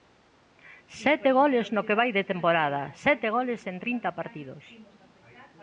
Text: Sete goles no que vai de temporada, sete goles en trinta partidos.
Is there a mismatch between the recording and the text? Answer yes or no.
no